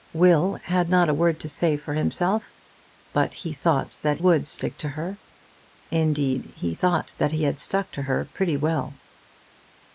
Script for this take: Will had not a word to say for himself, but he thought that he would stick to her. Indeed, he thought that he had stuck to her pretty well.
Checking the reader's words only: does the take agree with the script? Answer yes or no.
no